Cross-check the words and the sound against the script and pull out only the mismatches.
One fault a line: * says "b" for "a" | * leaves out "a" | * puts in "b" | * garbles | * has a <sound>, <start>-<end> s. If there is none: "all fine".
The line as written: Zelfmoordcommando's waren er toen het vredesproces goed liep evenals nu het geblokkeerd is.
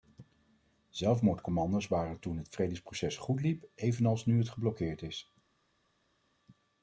all fine